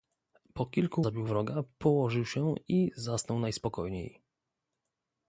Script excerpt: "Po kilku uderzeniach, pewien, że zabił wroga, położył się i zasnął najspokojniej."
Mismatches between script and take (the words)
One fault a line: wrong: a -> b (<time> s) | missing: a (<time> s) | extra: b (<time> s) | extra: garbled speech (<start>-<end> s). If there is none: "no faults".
missing: uderzeniach pewien że (1.0 s)